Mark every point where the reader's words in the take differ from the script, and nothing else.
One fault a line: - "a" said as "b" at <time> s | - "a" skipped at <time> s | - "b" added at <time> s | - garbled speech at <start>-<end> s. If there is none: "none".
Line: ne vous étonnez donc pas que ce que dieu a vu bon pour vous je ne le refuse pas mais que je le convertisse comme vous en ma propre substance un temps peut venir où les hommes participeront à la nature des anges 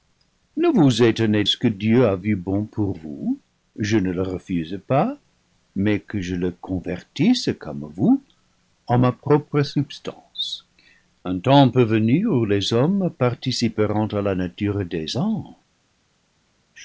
- "donc pas que" skipped at 1.4 s